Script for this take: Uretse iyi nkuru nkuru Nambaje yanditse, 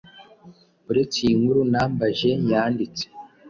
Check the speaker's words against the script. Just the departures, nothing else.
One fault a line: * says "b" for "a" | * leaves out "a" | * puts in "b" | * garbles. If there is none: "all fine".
* leaves out "nkuru"